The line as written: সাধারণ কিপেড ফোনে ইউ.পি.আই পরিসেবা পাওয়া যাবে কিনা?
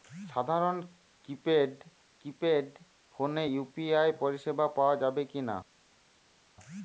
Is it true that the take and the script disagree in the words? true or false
true